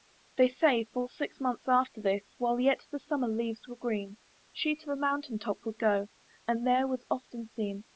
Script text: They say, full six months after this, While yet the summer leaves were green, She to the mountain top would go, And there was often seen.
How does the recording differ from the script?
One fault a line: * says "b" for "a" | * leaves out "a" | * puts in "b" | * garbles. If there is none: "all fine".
all fine